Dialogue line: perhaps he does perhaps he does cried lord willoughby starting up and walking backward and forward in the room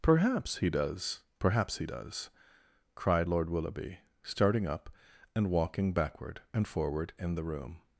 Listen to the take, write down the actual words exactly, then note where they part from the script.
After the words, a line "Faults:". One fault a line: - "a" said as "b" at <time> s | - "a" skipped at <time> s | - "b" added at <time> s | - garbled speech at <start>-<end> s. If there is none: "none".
perhaps he does perhaps he does cried lord willoughby starting up and walking backward and forward in the room
Faults:
none